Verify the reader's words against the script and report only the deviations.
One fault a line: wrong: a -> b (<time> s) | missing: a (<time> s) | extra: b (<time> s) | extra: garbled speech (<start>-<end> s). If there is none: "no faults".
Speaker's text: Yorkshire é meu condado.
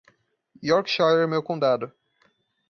no faults